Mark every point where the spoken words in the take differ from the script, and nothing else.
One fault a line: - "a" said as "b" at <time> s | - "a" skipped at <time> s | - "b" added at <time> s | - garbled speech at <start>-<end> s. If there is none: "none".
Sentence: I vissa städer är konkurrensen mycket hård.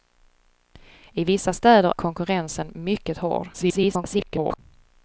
- "är" skipped at 1.9 s
- garbled speech at 3.5-4.6 s